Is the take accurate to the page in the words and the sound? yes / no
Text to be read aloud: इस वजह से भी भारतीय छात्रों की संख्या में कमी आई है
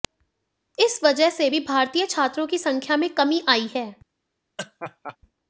no